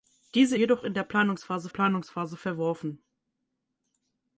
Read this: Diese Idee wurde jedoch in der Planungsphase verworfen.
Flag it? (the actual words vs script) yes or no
yes